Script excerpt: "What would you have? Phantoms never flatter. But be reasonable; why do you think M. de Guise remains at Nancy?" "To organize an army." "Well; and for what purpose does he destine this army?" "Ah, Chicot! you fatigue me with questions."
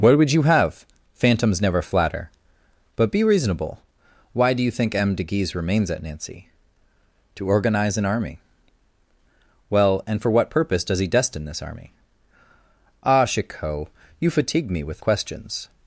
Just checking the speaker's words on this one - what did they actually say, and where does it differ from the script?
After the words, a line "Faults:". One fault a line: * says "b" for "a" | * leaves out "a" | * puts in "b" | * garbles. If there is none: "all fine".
"What would you have? Phantoms never flatter. But be reasonable; why do you think M. de Guise remains at Nancy?" "To organize an army." "Well; and for what purpose does he destine this army?" "Ah, Chicot! you fatigue me with questions."
Faults:
all fine